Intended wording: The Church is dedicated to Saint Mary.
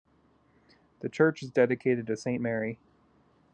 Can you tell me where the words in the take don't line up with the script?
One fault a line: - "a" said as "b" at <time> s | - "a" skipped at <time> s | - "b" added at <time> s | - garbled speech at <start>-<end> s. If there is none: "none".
none